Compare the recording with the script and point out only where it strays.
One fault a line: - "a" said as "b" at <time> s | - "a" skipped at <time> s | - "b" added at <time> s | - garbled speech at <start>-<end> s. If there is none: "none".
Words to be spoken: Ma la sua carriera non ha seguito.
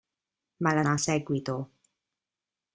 - "sua carriera non" skipped at 0.8 s